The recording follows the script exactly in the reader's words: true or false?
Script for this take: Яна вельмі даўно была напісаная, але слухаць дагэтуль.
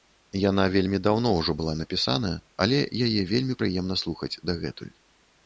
false